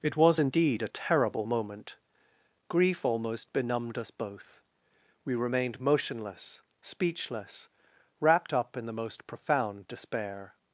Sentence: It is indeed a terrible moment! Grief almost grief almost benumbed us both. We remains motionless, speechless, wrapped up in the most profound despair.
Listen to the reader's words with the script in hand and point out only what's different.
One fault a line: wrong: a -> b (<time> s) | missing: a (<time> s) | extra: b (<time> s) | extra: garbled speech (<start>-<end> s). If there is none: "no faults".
wrong: is -> was (0.2 s)
missing: grief almost (3.5 s)
wrong: remains -> remained (5.3 s)